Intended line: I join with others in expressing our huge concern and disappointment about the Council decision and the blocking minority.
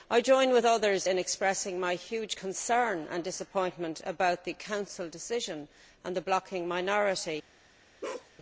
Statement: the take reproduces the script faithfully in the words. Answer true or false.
false